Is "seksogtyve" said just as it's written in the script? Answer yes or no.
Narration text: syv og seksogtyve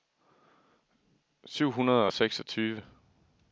yes